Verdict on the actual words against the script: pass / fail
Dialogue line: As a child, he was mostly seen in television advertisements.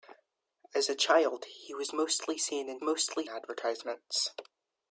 fail